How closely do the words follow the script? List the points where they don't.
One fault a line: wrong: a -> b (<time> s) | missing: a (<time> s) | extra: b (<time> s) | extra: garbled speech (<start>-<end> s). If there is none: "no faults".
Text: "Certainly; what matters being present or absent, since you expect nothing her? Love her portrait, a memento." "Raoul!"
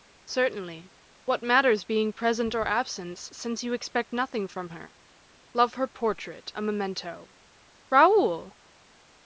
extra: from (4.5 s)